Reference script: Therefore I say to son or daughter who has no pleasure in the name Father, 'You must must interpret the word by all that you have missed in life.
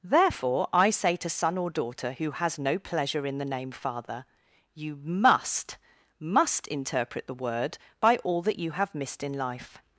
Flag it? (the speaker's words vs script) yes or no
no